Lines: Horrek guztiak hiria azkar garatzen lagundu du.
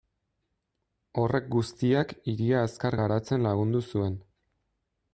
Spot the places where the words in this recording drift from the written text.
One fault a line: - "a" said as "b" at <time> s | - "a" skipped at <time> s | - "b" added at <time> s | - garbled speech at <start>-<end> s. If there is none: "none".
- "du" said as "zuen" at 3.9 s